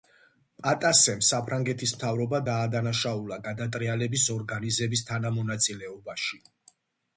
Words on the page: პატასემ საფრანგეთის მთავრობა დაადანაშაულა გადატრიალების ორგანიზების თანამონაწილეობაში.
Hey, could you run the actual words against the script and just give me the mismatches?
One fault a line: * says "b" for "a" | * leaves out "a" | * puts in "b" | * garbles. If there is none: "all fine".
all fine